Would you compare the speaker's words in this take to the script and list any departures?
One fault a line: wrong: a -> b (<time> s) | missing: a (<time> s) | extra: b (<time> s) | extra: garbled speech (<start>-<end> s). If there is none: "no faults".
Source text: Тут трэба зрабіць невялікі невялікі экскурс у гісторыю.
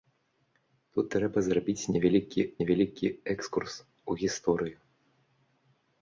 no faults